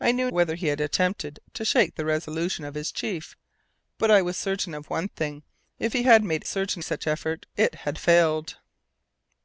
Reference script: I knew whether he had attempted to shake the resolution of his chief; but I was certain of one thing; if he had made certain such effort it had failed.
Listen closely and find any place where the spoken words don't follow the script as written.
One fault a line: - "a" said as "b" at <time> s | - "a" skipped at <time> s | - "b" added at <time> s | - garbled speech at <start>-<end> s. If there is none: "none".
none